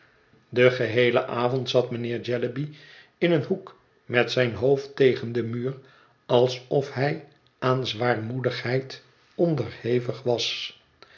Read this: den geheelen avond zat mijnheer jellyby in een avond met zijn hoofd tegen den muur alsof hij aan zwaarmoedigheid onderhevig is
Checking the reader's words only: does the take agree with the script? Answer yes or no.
no